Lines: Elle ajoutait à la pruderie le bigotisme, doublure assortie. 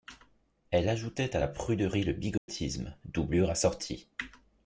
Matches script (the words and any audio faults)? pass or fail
fail